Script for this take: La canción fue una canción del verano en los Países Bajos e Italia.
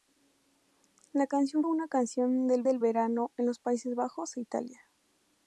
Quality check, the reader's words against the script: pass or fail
fail